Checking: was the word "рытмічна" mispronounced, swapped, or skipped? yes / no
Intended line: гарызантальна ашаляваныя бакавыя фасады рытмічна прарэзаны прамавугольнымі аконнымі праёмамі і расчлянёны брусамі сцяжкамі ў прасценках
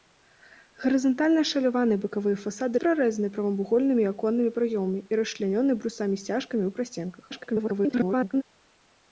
yes